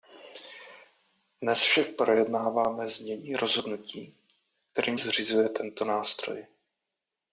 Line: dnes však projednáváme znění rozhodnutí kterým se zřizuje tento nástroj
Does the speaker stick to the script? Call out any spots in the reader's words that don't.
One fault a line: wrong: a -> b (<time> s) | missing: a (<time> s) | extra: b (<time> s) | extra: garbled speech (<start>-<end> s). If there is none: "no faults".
missing: se (5.0 s)